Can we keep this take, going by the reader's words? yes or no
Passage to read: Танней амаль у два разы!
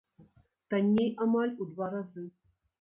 yes